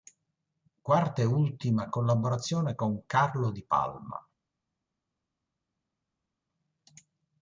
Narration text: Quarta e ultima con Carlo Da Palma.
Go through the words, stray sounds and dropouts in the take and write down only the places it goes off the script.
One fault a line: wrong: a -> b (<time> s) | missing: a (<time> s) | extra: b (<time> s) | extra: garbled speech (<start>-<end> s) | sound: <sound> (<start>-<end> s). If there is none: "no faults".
extra: collaborazione (1.9 s)
wrong: Da -> Di (3.5 s)